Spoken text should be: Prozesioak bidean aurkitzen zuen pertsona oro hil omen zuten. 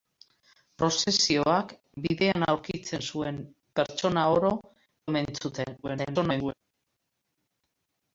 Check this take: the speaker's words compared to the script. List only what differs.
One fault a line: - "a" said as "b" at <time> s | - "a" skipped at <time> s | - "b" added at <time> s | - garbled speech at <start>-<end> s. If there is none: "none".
- "hil" skipped at 4.5 s
- garbled speech at 5.8-6.5 s